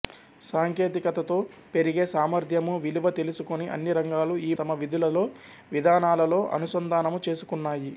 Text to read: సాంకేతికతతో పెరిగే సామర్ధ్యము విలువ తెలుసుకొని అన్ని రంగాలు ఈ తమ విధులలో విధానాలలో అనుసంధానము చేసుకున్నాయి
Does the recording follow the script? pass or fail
pass